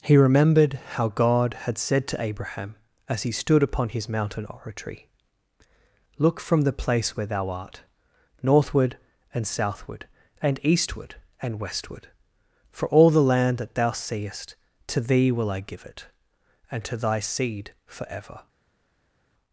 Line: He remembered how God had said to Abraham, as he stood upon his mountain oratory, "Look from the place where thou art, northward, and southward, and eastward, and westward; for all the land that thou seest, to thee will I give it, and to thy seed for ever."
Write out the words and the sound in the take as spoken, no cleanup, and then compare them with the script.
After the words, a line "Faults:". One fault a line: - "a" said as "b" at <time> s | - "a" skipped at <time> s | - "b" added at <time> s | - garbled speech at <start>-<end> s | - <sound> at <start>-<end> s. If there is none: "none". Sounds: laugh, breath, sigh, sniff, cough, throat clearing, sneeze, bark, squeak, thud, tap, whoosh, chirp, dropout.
He remembered how God had said to Abraham, as he stood upon his mountain oratory, "Look from the place where thou art, northward, and southward, and eastward, and westward; for all the land that thou seest, to thee will I give it, and to thy seed for ever."
Faults:
none